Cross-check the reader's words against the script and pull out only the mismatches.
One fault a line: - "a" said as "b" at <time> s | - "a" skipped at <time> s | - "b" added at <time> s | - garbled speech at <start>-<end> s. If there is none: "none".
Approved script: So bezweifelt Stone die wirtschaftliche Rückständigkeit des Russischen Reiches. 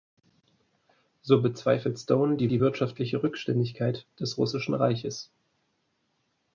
- "die" added at 2.5 s